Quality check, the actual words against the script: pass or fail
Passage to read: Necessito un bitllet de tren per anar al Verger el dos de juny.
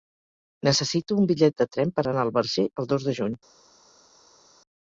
pass